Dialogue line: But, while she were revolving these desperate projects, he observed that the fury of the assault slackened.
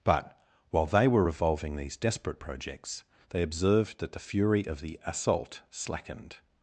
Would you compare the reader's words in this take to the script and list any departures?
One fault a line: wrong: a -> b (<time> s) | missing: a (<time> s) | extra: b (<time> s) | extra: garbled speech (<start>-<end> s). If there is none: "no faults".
wrong: she -> they (0.8 s)
wrong: he -> they (3.3 s)